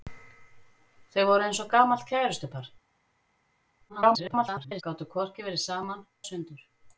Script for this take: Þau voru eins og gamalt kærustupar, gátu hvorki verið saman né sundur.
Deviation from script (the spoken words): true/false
true